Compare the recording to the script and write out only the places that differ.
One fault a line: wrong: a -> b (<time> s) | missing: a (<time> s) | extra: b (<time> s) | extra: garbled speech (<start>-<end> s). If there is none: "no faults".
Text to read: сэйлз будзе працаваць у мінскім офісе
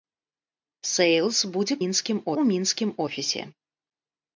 wrong: працаваць -> мінскім (1.8 s)